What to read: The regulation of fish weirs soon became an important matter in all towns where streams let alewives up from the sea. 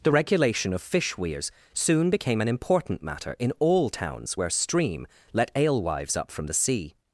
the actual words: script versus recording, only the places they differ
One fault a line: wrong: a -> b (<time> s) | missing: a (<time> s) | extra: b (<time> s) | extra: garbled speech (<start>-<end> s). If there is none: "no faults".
wrong: streams -> stream (4.5 s)